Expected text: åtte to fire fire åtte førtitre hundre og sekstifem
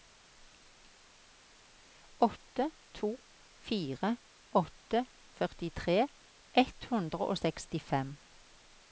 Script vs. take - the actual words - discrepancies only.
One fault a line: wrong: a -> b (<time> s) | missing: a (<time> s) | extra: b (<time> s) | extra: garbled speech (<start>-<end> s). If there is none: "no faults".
missing: fire (4.1 s)
extra: ett (6.6 s)